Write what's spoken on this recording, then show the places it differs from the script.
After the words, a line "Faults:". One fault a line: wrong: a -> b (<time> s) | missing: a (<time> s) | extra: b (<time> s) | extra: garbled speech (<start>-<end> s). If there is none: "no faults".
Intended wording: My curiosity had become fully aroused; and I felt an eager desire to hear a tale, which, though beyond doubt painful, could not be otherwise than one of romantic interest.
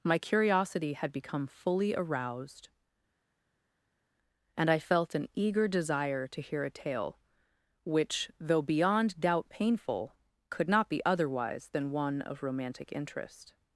My curiosity had become fully aroused; and I felt an eager desire to hear a tale, which, though beyond doubt painful, could not be otherwise than one of romantic interest.
Faults:
no faults